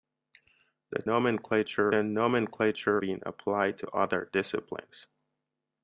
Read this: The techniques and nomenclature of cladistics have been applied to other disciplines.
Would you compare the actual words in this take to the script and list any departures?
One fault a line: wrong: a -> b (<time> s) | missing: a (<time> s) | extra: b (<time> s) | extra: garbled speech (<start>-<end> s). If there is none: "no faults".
wrong: techniques -> nomenclature (1.1 s)
missing: of cladistics have (3.0 s)